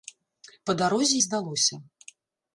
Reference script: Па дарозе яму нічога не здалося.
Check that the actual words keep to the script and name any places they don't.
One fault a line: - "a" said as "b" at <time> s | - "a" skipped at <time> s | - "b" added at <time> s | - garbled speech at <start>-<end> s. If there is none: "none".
- "яму нічога" skipped at 1.2 s